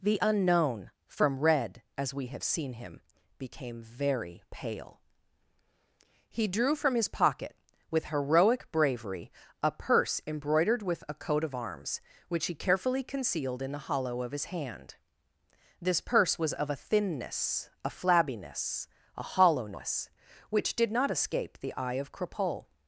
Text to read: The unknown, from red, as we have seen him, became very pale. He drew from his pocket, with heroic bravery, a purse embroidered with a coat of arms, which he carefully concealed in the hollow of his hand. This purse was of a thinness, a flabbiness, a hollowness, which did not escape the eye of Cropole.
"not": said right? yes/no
yes